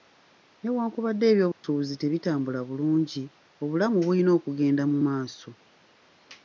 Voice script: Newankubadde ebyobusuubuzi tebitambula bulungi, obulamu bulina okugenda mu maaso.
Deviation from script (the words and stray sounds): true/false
true